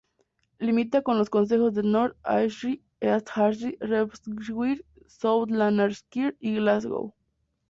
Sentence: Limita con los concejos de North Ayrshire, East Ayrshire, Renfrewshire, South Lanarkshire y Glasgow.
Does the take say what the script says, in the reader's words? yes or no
yes